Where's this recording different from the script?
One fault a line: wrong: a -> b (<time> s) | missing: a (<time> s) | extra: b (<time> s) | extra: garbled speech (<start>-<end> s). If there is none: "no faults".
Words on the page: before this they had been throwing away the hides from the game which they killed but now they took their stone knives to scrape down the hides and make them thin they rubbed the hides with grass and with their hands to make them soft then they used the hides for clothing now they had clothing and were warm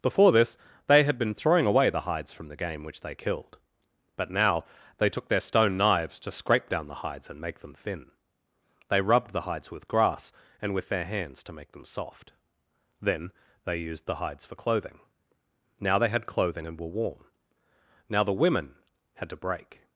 extra: now the women had to break (18.1 s)